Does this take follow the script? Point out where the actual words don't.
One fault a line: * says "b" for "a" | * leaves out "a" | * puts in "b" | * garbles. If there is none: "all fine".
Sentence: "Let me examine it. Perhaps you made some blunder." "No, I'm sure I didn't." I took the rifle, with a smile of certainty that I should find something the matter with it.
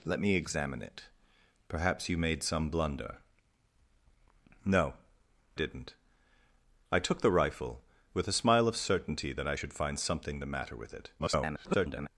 * leaves out "I'm sure I"
* garbles